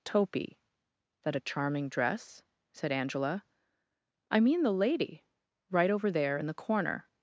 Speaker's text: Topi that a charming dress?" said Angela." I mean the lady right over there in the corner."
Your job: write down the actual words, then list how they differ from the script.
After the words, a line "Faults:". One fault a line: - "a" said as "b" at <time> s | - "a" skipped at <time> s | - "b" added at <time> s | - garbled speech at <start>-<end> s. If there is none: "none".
Topi that a charming dress?" said Angela." I mean the lady right over there in the corner."
Faults:
none